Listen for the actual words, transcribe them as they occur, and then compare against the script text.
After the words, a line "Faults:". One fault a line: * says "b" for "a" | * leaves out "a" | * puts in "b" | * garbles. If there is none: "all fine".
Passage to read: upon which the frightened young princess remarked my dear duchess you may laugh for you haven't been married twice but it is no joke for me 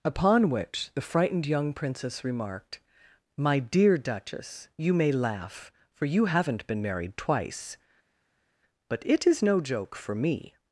upon which the frightened young princess remarked my dear duchess you may laugh for you haven't been married twice but it is no joke for me
Faults:
all fine